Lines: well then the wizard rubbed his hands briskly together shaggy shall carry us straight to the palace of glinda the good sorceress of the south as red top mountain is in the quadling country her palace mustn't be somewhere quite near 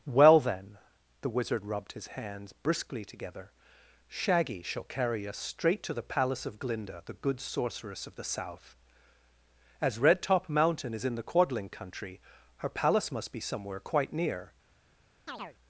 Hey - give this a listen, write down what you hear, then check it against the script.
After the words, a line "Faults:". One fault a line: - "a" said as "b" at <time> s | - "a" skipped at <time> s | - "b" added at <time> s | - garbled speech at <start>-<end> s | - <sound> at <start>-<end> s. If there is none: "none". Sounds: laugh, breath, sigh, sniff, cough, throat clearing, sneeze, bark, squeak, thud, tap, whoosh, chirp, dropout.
well then the wizard rubbed his hands briskly together shaggy shall carry us straight to the palace of glinda the good sorceress of the south as red top mountain is in the quadling country her palace must be somewhere quite near
Faults:
- "mustn't" said as "must" at 13.1 s
- chirp at 15.3-15.6 s